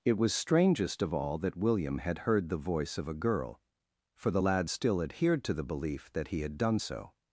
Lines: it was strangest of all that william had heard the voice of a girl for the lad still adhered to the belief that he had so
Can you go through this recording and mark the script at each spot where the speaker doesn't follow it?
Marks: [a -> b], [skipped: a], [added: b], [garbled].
it was strangest of all that william had heard the voice of a girl for the lad still adhered to the belief that he had [added: done] so